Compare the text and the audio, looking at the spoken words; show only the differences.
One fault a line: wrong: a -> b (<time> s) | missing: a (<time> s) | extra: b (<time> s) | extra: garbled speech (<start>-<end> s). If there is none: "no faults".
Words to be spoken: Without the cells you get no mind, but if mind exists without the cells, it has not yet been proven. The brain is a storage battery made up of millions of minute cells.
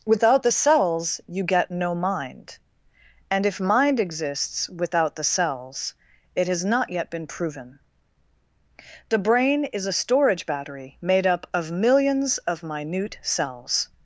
wrong: but -> and (3.3 s)